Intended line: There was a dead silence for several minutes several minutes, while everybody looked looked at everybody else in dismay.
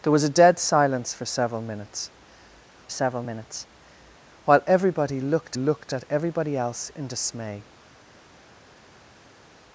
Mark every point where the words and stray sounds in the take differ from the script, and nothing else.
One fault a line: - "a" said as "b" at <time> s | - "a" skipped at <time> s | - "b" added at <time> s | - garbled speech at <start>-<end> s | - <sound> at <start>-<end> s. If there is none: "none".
none